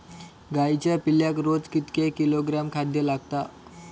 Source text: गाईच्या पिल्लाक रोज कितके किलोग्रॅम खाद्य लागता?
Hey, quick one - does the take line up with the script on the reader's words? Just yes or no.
yes